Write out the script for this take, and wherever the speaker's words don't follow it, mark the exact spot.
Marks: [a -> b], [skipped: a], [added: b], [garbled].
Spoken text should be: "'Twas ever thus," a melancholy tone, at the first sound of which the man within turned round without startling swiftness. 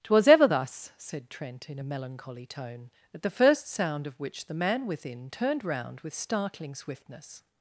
"'Twas ever thus," [added: said Trent in] a melancholy tone, at the first sound of which the man within turned round [without -> with] startling swiftness.